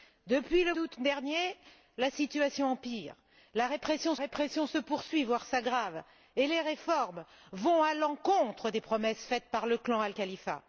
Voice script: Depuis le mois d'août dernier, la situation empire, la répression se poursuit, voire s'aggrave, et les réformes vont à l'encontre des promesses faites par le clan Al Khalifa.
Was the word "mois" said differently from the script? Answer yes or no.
yes